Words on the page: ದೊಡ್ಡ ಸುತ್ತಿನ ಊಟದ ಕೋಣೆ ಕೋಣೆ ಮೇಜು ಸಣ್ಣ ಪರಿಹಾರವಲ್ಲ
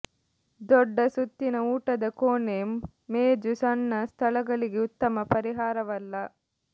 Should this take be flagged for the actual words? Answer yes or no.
yes